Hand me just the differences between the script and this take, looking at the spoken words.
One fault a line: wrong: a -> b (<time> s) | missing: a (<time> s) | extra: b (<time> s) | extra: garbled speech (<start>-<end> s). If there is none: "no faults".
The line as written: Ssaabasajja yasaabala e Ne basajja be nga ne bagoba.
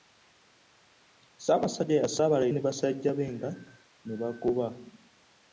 no faults